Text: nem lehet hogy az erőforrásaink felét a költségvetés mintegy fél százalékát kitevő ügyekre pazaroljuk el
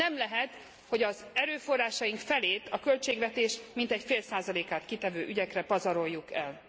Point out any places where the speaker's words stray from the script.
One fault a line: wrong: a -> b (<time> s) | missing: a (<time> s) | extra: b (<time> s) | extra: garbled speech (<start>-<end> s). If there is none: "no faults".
no faults